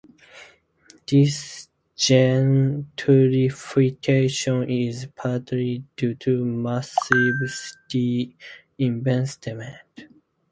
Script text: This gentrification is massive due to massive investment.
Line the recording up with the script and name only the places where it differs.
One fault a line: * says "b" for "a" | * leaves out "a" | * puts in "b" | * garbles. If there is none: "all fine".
* says "partly" for "massive"
* puts in "city"